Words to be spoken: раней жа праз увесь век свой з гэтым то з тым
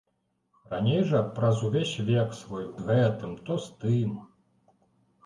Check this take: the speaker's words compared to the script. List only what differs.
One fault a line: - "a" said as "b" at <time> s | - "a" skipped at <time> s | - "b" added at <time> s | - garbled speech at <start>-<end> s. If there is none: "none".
none